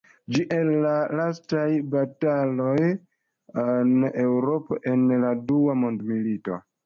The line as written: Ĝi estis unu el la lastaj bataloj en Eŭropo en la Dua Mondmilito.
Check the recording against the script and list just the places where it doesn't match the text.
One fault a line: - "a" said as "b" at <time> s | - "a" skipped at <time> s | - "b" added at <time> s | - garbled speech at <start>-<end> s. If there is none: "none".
- "estis unu" skipped at 0.4 s